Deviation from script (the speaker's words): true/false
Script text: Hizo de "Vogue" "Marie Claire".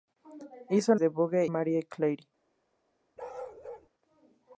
false